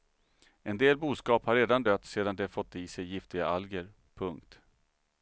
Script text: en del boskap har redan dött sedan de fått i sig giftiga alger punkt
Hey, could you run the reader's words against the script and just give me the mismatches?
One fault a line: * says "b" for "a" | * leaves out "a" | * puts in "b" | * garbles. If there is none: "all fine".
all fine